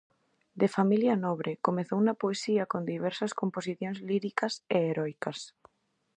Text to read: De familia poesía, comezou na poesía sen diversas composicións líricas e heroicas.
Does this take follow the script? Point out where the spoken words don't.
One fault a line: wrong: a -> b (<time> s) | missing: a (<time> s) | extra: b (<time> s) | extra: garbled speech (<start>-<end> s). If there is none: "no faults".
wrong: poesía -> nobre (1.2 s)
wrong: sen -> con (2.7 s)